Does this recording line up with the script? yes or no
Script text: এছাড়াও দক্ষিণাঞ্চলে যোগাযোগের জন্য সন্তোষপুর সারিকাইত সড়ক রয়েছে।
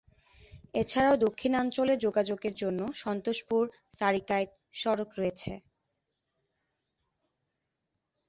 yes